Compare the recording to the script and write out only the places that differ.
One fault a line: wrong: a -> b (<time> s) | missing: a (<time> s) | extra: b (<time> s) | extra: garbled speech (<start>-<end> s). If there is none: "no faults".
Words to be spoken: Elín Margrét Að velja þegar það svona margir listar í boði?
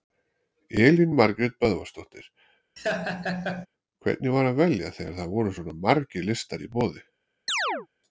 extra: Böðvarsdóttir Hvernig var (1.6 s)
extra: voru (5.3 s)